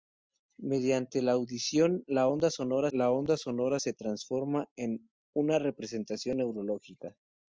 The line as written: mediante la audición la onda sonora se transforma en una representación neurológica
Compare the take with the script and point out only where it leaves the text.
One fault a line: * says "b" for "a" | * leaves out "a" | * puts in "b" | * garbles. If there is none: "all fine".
* puts in "la onda sonora"